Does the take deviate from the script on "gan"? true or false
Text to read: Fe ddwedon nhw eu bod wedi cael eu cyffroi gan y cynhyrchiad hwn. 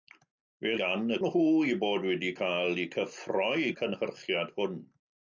true